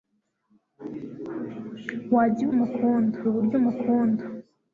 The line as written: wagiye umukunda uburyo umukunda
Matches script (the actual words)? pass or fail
pass